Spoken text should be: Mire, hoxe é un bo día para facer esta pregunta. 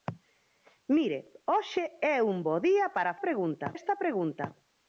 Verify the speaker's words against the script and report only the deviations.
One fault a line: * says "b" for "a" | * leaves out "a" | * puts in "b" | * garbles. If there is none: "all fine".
* says "pregunta" for "facer"